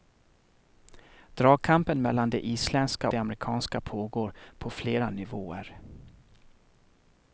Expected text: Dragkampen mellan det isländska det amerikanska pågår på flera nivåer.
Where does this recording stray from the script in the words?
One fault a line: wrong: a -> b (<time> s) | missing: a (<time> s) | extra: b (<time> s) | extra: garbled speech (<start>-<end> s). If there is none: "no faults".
no faults